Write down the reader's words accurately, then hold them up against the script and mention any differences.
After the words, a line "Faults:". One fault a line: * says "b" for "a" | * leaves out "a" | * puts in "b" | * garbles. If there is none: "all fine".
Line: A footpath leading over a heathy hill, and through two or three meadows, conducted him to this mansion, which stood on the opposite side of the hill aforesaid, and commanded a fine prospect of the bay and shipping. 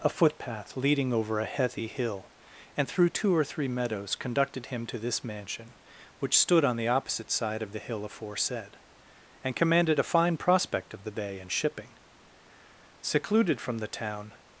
A footpath leading over a heathy hill, and through two or three meadows, conducted him to this mansion, which stood on the opposite side of the hill aforesaid, and commanded a fine prospect of the bay and shipping. Secluded from the town
Faults:
* puts in "Secluded from the town"